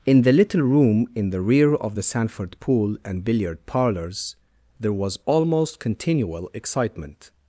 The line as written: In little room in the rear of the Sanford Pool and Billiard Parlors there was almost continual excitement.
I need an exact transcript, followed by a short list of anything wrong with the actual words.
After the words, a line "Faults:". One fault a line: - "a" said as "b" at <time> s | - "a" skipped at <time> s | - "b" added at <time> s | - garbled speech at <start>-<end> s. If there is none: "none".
In the little room in the rear of the Sanford Pool and Billiard Parlors there was almost continual excitement.
Faults:
- "the" added at 0.2 s